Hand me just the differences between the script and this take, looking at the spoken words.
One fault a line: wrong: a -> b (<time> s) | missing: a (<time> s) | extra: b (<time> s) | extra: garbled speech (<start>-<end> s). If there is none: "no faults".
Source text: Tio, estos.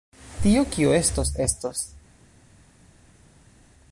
extra: kio estos (0.7 s)